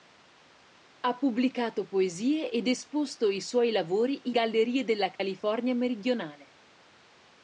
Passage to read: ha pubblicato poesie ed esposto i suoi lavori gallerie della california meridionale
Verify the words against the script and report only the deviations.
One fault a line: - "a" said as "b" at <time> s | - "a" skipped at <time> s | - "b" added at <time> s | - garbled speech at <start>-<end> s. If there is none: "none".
none